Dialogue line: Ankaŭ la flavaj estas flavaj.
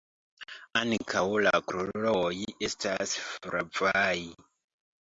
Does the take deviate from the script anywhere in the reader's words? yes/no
yes